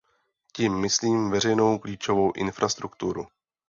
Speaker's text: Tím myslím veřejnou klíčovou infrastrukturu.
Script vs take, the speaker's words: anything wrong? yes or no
no